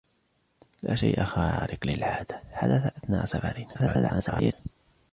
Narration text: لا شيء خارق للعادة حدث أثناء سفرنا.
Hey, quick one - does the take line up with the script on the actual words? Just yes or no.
no